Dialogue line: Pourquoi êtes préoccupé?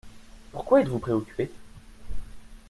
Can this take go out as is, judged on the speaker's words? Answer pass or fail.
fail